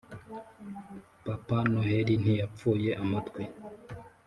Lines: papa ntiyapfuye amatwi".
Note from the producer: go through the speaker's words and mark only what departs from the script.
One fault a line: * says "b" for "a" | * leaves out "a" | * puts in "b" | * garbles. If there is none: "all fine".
* puts in "noheli"